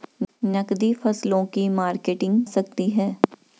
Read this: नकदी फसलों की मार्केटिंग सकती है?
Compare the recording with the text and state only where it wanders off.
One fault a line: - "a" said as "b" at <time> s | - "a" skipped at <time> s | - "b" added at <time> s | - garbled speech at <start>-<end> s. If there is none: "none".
none